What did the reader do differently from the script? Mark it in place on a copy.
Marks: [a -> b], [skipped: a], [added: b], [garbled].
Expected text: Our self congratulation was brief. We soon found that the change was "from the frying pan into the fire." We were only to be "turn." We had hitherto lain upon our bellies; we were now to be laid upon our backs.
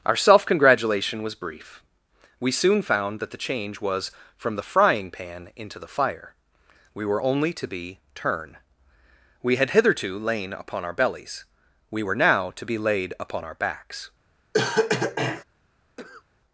Our self congratulation was brief. We soon found that the change was "from the frying pan into the fire." We were only to be "turn." We had hitherto lain upon our bellies; we were now to be laid upon our backs.